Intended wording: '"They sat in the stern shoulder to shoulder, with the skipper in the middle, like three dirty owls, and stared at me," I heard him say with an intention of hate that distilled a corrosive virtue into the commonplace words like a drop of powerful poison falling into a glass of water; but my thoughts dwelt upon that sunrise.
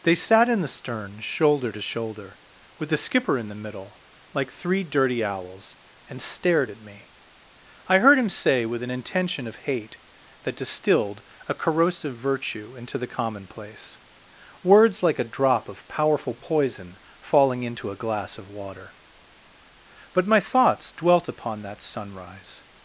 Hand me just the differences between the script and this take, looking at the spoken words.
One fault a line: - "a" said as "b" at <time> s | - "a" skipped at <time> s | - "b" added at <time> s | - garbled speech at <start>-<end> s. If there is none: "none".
none